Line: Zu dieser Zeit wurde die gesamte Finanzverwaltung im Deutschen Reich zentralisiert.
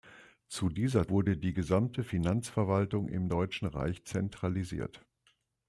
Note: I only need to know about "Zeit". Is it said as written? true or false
false